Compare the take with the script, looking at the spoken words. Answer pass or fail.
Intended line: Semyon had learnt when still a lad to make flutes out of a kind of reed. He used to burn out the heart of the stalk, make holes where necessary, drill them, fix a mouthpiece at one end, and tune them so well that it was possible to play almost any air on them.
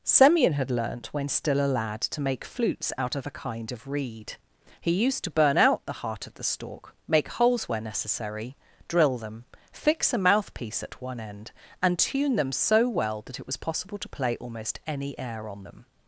pass